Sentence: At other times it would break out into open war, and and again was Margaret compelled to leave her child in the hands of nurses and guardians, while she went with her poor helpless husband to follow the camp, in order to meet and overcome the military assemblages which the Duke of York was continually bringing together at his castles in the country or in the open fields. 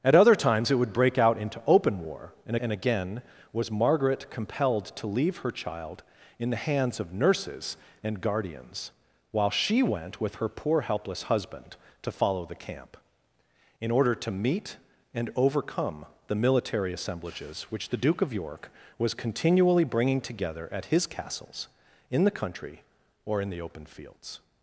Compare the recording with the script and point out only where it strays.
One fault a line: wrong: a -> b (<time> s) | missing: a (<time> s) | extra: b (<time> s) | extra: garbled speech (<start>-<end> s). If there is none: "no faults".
no faults